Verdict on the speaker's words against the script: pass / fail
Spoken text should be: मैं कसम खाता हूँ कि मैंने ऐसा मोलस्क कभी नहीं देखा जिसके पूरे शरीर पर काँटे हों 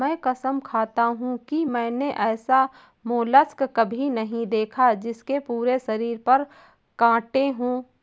pass